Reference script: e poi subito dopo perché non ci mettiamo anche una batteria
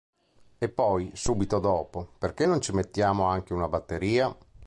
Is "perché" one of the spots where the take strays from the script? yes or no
no